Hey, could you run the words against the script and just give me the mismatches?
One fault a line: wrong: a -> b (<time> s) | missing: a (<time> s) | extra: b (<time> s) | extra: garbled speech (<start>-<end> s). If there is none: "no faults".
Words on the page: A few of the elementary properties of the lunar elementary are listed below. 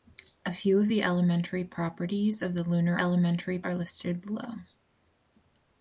no faults